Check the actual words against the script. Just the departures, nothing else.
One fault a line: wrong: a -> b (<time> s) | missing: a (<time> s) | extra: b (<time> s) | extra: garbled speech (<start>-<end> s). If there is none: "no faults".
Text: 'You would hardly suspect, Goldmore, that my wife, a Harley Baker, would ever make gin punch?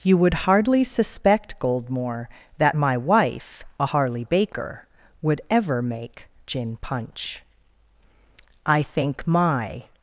extra: I think my (8.7 s)